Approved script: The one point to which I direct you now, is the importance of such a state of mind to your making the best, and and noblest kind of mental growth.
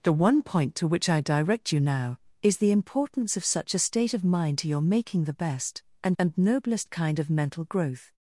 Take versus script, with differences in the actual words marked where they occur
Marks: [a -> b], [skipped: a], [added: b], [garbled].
The one point to which I direct you now, is the importance of such a state of mind to your making the best, and and noblest kind of mental growth.